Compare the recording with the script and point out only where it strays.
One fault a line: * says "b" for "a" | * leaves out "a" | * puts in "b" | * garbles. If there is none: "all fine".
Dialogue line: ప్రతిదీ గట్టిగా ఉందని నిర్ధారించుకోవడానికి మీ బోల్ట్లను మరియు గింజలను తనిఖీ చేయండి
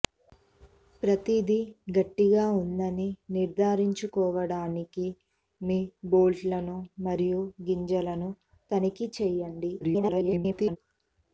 * garbles